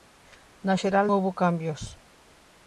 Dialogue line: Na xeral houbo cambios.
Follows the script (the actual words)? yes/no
yes